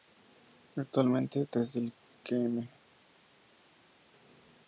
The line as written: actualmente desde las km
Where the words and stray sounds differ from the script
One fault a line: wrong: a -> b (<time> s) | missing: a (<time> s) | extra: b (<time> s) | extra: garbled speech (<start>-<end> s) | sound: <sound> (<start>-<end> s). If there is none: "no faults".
wrong: las -> el (1.8 s)